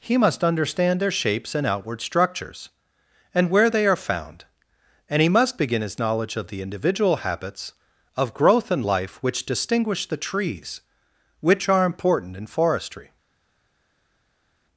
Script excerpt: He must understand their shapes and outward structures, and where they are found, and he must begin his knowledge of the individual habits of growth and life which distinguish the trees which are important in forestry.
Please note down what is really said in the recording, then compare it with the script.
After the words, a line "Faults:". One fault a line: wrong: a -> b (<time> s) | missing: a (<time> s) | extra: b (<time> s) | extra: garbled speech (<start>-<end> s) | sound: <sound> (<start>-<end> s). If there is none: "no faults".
He must understand their shapes and outward structures, and where they are found, and he must begin his knowledge of the individual habits of growth and life which distinguish the trees which are important in forestry.
Faults:
no faults